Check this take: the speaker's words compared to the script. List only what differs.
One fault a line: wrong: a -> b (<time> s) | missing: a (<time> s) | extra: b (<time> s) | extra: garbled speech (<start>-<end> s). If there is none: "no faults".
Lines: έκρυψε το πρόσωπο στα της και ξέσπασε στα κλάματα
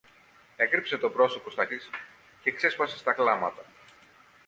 no faults